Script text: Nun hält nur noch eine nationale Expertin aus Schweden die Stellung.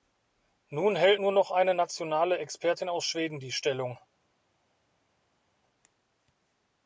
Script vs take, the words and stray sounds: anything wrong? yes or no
no